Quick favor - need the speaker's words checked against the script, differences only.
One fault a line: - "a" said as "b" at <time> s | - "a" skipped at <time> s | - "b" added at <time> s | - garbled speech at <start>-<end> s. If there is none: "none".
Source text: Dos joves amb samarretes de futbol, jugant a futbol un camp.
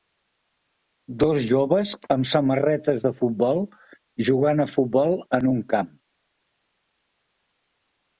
- "en" added at 5.4 s